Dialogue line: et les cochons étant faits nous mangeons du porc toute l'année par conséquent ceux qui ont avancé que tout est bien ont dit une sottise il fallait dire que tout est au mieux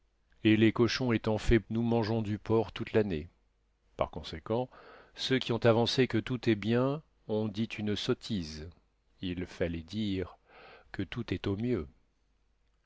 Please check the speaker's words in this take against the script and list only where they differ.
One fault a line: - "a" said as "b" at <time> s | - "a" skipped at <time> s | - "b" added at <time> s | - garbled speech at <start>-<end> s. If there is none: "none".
none